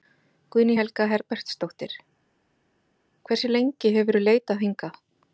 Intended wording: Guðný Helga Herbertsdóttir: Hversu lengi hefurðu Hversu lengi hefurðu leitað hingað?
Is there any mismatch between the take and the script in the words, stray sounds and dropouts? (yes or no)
yes